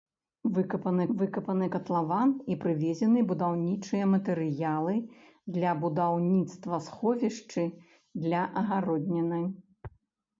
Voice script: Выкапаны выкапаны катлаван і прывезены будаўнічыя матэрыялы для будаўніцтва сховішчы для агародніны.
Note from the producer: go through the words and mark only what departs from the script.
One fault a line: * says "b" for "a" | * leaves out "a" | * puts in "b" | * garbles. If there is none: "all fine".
all fine